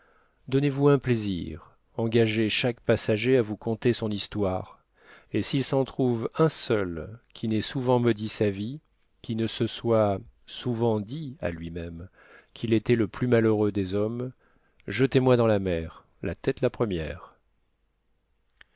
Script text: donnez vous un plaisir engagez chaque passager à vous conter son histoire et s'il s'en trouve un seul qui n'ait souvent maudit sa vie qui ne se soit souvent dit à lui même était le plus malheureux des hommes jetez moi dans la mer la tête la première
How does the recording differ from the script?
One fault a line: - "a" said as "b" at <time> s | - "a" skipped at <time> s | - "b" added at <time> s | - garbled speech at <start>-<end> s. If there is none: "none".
- "qu'il" added at 12.5 s